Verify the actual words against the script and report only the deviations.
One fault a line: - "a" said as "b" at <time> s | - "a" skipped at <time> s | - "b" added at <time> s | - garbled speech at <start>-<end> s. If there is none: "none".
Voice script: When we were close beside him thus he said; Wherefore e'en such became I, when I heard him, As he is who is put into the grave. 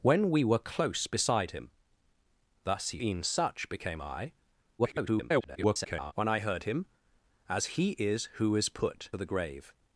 - "said Wherefore" skipped at 3.0 s
- garbled speech at 4.8-6.1 s
- "into" skipped at 9.1 s